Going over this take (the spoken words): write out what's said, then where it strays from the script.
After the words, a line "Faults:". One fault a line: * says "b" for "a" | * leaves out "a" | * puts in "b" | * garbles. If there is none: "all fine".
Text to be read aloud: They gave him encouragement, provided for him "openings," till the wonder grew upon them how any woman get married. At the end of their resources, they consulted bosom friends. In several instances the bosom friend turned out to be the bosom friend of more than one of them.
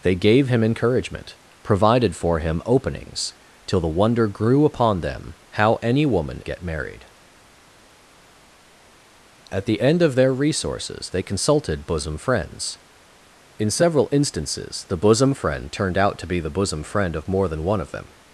They gave him encouragement, provided for him "openings," till the wonder grew upon them how any woman get married. At the end of their resources, they consulted bosom friends. In several instances the bosom friend turned out to be the bosom friend of more than one of them.
Faults:
all fine